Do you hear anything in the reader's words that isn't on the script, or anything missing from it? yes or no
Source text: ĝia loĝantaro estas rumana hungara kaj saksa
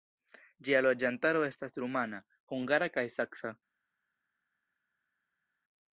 no